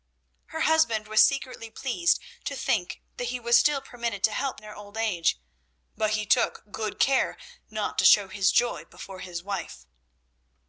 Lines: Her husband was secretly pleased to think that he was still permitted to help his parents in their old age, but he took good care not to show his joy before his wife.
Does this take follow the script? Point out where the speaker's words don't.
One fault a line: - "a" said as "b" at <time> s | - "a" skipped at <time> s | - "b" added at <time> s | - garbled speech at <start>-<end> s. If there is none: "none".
- "his parents" skipped at 4.6 s